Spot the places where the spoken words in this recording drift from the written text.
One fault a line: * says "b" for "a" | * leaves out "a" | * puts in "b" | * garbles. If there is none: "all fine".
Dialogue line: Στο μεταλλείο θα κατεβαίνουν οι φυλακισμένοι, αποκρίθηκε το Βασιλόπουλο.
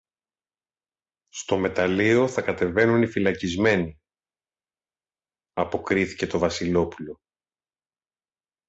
all fine